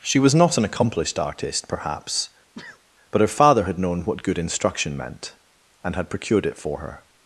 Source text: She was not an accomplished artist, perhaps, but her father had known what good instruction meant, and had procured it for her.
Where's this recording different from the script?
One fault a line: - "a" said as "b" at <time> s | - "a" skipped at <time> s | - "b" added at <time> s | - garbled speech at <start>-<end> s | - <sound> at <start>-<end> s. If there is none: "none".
- sneeze at 2.5-2.8 s